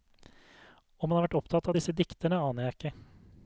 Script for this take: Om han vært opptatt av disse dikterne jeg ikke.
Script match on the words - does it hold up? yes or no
no